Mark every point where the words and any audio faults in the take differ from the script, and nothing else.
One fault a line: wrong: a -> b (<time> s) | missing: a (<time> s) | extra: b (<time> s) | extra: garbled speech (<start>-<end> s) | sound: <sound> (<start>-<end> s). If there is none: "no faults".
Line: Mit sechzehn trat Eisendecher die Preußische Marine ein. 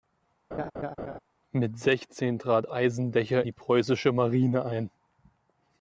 sound: laugh (0.5-1.2 s)